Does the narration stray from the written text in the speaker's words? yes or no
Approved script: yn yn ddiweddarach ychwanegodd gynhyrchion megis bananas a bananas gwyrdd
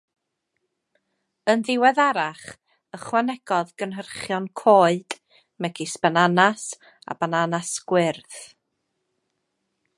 yes